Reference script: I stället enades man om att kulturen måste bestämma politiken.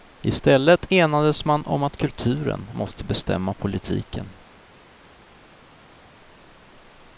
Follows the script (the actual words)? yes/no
yes